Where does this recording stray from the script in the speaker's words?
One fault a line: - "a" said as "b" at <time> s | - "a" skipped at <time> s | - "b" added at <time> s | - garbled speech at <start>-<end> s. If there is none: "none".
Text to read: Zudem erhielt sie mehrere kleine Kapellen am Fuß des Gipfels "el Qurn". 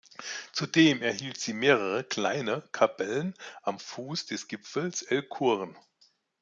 none